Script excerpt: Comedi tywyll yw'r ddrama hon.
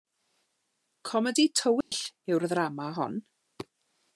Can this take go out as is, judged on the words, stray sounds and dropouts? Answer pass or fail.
fail